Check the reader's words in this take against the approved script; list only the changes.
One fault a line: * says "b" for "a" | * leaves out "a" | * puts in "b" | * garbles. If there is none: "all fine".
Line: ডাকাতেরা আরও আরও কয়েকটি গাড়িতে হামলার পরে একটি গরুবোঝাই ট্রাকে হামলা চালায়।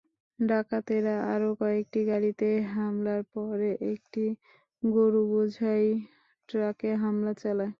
* leaves out "আরও"